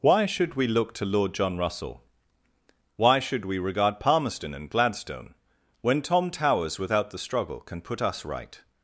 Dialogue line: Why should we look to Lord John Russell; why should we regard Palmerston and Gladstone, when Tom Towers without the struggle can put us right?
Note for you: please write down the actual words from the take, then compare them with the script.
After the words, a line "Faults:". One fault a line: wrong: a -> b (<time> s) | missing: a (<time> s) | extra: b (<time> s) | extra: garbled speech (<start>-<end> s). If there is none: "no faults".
Why should we look to Lord John Russell; why should we regard Palmerston and Gladstone, when Tom Towers without the struggle can put us right?
Faults:
no faults